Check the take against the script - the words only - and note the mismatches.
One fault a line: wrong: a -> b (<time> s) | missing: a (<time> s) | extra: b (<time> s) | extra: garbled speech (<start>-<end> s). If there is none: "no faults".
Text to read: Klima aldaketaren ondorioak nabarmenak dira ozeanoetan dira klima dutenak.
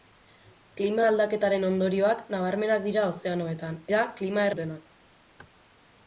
no faults